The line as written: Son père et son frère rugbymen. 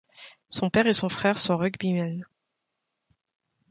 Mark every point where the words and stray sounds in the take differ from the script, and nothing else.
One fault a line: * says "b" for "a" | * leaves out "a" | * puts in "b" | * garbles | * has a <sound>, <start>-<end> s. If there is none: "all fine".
* puts in "sont"